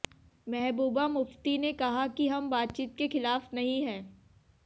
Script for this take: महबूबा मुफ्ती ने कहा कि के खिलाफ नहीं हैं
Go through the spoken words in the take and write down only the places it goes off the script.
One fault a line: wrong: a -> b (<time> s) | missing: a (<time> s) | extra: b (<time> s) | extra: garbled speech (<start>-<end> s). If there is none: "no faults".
extra: हम बातचीत (2.3 s)